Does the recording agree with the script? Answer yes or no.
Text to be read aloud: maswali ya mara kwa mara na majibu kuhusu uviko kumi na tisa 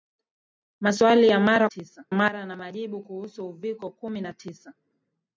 no